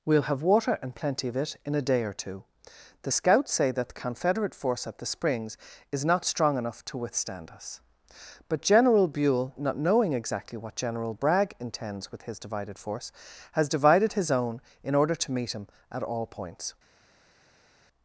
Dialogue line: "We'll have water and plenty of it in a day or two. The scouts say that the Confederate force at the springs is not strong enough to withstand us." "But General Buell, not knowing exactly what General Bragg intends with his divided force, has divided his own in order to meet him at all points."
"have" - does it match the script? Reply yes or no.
yes